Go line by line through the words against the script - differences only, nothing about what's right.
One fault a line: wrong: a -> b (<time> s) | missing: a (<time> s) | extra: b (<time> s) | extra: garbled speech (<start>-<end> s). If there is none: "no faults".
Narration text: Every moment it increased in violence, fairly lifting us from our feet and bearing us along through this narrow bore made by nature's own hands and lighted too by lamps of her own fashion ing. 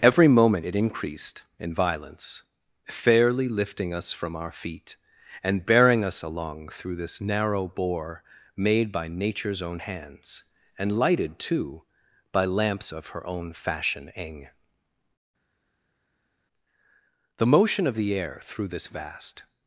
extra: The motion of the air through this vast (17.4 s)